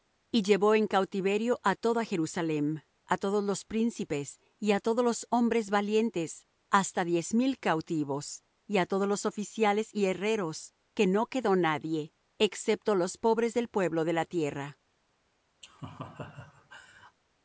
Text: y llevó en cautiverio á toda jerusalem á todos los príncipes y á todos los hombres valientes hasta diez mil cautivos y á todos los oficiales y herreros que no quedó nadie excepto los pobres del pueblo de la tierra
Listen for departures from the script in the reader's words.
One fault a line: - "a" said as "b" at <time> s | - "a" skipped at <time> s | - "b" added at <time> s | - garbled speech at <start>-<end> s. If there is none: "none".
none